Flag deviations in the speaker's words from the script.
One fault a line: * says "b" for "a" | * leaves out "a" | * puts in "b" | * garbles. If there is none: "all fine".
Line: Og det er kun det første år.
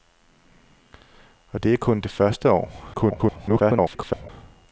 * garbles